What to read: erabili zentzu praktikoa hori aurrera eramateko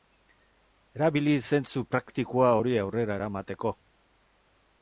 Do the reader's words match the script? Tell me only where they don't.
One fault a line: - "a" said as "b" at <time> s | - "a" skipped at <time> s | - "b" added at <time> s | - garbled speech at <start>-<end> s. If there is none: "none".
none